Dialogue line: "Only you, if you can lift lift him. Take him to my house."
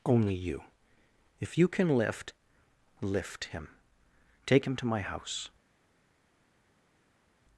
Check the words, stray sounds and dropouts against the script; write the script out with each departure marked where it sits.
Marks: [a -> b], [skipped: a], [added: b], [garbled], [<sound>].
"Only you, if you can lift lift him. Take him to my house."